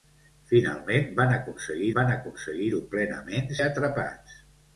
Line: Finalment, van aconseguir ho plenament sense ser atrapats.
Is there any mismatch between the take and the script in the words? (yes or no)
yes